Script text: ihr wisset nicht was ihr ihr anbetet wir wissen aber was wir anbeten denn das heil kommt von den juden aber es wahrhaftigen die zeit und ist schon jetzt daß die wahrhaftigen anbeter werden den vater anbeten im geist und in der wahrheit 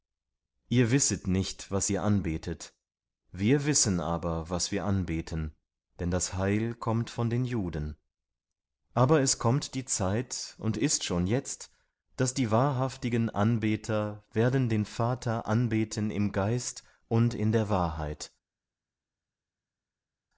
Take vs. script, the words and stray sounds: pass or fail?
fail